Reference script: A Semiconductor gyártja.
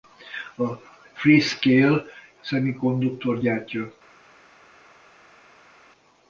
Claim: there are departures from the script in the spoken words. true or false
true